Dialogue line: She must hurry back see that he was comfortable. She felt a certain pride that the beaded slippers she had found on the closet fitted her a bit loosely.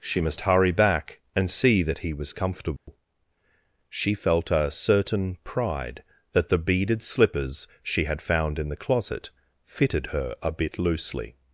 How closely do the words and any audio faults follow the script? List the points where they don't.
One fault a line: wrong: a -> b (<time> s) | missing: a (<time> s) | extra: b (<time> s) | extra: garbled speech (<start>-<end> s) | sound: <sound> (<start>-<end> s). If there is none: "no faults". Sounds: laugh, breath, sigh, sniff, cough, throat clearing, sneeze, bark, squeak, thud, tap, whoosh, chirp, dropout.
extra: and (1.4 s)
sound: dropout (2.8-2.9 s)
wrong: on -> in (8.6 s)